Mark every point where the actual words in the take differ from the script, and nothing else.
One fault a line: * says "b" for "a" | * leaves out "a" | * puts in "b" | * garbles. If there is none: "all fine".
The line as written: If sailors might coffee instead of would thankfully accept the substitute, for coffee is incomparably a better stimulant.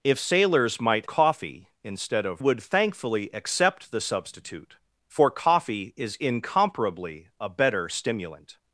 all fine